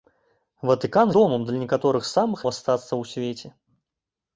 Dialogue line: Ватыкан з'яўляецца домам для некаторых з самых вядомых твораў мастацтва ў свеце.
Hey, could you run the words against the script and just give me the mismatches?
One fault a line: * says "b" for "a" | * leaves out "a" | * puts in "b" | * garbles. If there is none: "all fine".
* leaves out "з'яўляецца"
* leaves out "вядомых твораў"